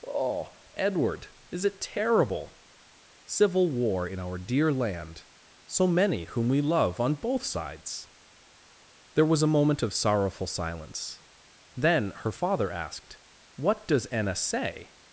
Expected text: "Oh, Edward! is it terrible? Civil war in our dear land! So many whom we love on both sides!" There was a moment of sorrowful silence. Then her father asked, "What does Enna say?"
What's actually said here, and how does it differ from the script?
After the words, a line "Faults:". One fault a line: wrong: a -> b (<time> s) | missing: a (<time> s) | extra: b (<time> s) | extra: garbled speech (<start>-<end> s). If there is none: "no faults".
"Oh, Edward! is it terrible? Civil war in our dear land! So many whom we love on both sides!" There was a moment of sorrowful silence. Then her father asked, "What does Enna say?"
Faults:
no faults